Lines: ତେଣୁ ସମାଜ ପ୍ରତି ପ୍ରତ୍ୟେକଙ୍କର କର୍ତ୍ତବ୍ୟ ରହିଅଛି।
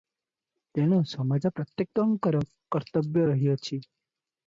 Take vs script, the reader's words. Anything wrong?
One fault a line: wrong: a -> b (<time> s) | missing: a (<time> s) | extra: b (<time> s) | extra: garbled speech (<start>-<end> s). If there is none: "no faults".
missing: ପ୍ରତି (1.5 s)